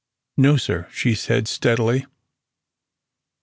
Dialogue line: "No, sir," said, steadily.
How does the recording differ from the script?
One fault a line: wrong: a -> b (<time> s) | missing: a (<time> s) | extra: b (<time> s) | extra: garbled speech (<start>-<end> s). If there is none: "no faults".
extra: she (0.9 s)